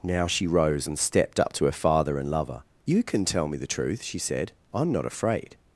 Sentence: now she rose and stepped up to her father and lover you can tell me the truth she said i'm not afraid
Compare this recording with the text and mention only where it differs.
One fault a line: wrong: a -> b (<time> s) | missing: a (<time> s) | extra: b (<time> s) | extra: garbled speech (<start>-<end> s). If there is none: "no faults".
no faults